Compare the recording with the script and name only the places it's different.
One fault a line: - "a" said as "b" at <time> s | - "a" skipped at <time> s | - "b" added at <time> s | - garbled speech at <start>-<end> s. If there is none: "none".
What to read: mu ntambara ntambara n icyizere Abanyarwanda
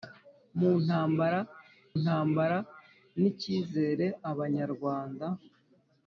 none